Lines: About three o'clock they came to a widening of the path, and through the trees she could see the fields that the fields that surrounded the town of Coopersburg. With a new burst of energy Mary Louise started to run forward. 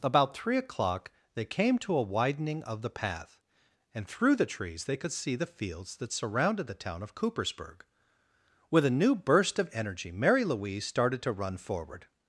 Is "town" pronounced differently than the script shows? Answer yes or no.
no